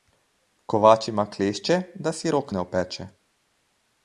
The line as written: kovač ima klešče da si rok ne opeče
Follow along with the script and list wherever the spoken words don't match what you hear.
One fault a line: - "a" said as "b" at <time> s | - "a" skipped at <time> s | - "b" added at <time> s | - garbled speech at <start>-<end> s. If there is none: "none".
none